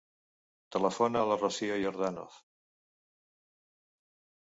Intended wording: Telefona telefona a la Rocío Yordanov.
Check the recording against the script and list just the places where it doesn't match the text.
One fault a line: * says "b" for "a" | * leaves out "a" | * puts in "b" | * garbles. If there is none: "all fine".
* leaves out "telefona"